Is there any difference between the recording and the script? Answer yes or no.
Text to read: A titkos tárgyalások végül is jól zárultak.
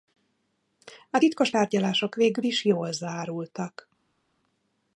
no